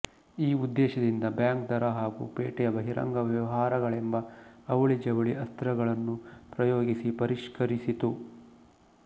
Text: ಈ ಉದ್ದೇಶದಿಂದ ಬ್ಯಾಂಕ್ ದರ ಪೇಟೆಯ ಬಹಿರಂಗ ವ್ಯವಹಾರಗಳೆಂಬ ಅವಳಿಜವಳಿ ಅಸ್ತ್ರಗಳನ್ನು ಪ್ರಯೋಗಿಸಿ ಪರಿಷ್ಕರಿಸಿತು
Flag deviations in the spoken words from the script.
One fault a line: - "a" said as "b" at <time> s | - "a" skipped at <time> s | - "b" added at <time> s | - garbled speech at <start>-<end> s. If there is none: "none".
- "ಹಾಗೂ" added at 2.0 s